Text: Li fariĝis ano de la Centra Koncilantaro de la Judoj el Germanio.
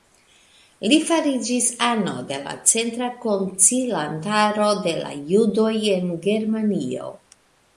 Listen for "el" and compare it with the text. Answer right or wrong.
wrong